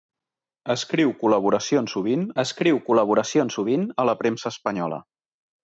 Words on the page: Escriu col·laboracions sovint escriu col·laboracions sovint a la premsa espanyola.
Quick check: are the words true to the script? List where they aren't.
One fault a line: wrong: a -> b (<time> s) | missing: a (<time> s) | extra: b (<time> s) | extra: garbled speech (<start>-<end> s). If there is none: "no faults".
no faults